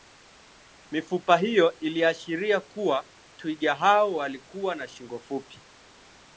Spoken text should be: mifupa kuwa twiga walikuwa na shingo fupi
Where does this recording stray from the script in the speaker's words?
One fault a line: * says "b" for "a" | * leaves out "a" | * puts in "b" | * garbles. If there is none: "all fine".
* puts in "hiyo iliashiria"
* puts in "hao"